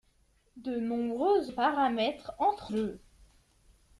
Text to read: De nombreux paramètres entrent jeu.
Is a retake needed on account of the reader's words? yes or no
no